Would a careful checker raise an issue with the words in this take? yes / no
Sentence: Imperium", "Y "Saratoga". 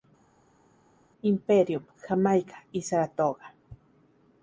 yes